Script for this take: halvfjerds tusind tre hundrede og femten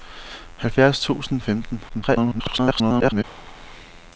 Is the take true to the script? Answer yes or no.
no